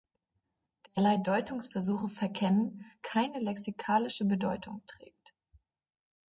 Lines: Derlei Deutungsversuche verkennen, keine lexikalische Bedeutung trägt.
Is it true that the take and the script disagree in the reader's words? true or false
false